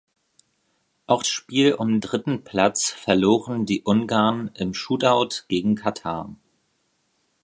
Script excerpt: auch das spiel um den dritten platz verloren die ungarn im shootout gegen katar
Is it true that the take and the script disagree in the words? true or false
true